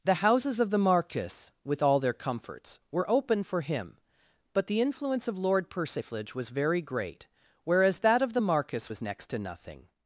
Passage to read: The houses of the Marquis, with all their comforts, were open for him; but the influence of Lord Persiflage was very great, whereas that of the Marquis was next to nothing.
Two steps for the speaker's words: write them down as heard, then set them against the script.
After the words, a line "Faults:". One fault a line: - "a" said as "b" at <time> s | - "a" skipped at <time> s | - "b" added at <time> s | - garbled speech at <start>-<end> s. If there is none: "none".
The houses of the Marquis, with all their comforts, were open for him; but the influence of Lord Persiflage was very great, whereas that of the Marquis was next to nothing.
Faults:
none